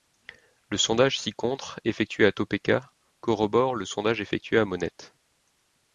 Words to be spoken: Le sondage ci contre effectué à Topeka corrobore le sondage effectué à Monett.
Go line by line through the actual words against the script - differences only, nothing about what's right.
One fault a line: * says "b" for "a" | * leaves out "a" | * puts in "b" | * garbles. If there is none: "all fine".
all fine